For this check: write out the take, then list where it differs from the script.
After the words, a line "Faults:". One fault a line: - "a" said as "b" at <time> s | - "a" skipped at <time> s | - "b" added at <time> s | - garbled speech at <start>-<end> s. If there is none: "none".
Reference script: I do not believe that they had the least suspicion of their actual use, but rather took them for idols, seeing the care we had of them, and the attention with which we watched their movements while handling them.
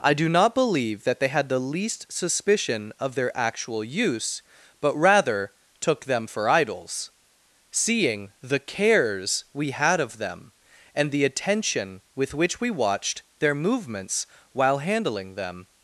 I do not believe that they had the least suspicion of their actual use, but rather took them for idols, seeing the cares we had of them, and the attention with which we watched their movements while handling them.
Faults:
- "care" said as "cares" at 8.6 s